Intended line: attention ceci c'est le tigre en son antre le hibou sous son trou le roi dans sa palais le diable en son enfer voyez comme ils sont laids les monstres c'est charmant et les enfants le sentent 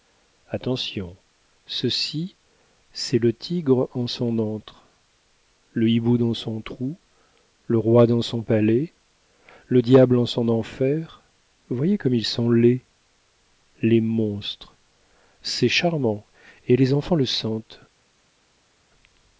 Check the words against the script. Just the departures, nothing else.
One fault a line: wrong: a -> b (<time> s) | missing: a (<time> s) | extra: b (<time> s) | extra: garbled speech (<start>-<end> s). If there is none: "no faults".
wrong: sous -> dans (6.2 s)
wrong: sa -> son (8.2 s)